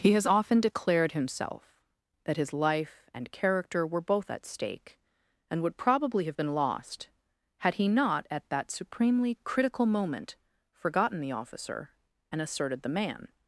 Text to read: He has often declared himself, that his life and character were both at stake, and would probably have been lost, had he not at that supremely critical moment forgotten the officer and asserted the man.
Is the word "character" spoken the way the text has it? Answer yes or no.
yes